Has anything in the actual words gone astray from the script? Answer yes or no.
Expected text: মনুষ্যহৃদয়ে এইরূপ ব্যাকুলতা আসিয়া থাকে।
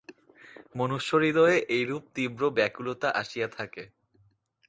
yes